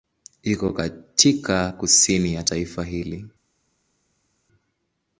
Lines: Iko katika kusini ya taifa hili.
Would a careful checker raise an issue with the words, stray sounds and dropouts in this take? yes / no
no